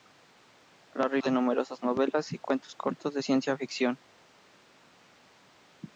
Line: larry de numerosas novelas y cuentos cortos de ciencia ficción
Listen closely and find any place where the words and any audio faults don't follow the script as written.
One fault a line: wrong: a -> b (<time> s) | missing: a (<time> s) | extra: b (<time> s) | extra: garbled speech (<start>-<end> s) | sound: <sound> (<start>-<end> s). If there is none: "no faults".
no faults